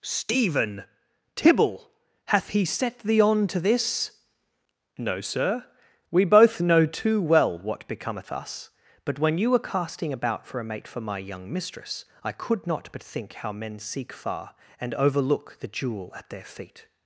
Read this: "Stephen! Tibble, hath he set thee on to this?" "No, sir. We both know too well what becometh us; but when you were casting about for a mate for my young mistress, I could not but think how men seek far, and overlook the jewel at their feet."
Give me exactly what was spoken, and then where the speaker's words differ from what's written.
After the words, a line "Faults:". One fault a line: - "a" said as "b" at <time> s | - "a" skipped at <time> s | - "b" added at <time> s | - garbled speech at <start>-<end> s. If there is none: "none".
"Stephen! Tibble, hath he set thee on to this?" "No, sir. We both know too well what becometh us; but when you were casting about for a mate for my young mistress, I could not but think how men seek far, and overlook the jewel at their feet."
Faults:
none